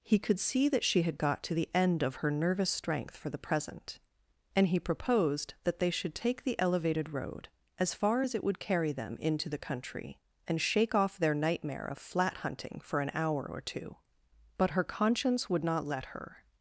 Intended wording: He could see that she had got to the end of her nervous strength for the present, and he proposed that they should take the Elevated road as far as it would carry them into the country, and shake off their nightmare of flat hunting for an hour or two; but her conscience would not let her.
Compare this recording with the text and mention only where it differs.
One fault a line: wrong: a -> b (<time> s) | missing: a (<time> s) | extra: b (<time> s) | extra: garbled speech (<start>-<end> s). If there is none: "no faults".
no faults